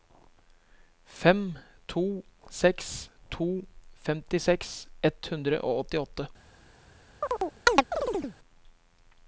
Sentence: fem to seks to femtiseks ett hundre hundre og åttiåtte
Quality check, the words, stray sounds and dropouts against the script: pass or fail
fail